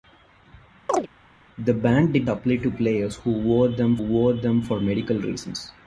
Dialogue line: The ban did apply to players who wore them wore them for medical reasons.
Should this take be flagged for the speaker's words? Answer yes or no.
no